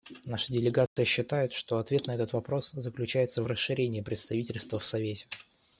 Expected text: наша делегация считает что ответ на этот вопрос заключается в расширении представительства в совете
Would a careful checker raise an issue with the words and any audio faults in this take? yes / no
yes